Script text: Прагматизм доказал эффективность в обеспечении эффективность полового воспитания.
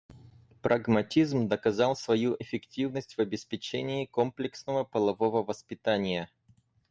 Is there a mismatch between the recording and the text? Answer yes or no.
yes